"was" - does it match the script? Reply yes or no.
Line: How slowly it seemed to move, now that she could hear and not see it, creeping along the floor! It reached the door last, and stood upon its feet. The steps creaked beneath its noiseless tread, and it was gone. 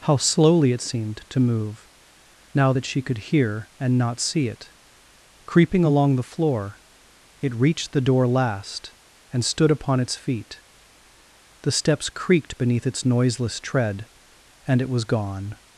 yes